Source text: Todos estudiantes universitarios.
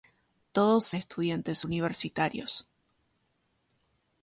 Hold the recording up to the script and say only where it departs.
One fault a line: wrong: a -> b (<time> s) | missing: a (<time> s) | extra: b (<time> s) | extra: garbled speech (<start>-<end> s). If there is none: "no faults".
no faults